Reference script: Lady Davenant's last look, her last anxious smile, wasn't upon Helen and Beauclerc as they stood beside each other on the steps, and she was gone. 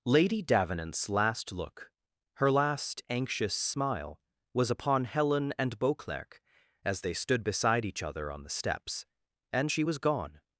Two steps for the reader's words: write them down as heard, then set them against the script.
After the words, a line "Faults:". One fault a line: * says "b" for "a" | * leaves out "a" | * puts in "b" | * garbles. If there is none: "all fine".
Lady Davenant's last look, her last anxious smile, was upon Helen and Beauclerc as they stood beside each other on the steps, and she was gone.
Faults:
* says "was" for "wasn't"